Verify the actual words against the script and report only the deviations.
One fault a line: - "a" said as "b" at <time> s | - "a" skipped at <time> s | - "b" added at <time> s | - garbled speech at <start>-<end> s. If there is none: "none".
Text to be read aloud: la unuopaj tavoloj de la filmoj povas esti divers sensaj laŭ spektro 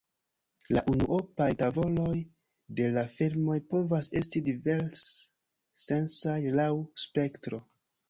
none